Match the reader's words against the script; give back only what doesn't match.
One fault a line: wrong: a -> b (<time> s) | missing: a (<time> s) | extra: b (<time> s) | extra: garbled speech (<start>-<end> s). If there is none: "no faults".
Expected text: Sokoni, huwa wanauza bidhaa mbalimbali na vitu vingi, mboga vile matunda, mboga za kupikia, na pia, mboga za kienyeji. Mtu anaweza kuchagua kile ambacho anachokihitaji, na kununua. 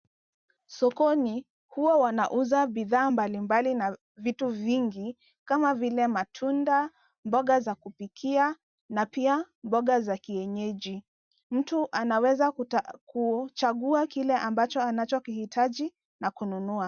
wrong: mboga -> kama (5.4 s)